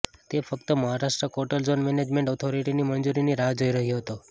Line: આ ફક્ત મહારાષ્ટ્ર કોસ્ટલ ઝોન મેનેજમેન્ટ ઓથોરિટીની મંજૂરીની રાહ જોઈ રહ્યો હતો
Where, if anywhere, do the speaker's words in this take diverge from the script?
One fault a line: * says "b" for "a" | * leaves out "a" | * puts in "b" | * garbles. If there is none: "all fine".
* says "તે" for "આ"